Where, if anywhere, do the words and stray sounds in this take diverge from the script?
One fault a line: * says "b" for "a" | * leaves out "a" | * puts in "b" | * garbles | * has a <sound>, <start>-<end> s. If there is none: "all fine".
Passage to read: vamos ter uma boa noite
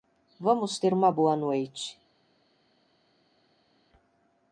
all fine